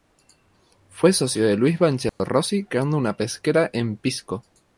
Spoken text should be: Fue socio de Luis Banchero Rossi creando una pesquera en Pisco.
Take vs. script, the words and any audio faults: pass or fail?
fail